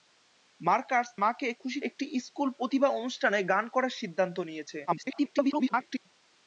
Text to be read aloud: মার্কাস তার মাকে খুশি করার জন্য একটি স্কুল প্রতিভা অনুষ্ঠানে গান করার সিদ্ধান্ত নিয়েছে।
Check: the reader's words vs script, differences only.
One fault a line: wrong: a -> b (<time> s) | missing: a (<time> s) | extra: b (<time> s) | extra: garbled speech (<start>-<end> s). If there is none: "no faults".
missing: তার (1.1 s)
missing: করার জন্য (1.8 s)
extra: garbled speech (4.9-6.1 s)